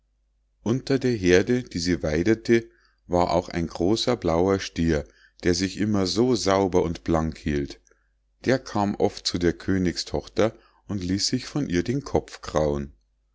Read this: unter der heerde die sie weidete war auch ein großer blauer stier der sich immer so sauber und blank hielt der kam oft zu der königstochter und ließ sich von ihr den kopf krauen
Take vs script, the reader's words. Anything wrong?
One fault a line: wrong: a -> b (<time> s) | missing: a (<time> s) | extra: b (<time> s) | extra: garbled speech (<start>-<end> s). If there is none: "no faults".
no faults